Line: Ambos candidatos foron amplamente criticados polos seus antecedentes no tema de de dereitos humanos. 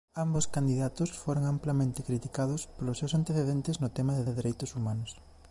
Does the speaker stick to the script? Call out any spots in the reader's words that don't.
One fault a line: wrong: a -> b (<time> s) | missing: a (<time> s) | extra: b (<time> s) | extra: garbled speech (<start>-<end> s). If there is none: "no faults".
no faults